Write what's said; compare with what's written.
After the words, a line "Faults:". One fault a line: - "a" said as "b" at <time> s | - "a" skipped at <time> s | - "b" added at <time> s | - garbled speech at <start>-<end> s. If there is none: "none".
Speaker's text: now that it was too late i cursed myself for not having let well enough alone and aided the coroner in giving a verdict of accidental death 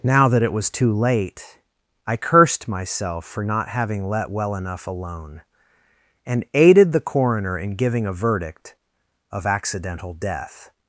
now that it was too late i cursed myself for not having let well enough alone and aided the coroner in giving a verdict of accidental death
Faults:
none